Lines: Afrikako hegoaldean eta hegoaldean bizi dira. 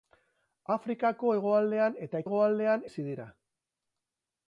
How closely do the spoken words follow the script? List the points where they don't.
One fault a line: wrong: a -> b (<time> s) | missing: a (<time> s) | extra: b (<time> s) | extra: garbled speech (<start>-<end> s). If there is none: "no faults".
no faults